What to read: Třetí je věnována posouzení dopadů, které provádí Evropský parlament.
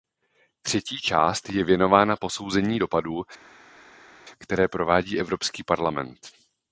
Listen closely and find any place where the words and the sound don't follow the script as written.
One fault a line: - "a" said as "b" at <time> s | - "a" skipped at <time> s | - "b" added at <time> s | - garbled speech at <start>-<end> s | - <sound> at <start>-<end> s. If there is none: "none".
- "část" added at 1.0 s